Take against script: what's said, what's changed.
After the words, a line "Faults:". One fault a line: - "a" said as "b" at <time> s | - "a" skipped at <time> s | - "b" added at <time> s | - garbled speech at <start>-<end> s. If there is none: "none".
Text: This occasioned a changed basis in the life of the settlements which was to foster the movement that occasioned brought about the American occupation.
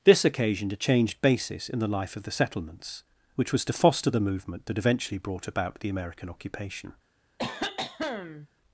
This occasioned a changed basis in the life of the settlements which was to foster the movement that eventually brought about the American occupation.
Faults:
- "occasioned" said as "eventually" at 4.8 s